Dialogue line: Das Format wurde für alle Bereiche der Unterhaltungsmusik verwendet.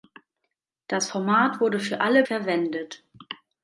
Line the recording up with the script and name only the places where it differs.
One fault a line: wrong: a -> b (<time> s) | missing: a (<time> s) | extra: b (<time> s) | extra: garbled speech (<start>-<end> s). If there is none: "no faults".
missing: Bereiche der Unterhaltungsmusik (2.2 s)